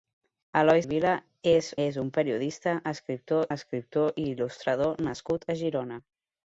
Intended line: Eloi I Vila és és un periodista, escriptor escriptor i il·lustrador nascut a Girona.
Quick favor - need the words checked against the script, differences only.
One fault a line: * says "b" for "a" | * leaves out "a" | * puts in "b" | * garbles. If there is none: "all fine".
all fine